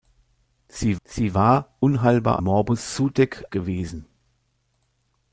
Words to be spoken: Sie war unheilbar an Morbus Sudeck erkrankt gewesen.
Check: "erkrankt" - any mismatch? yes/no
yes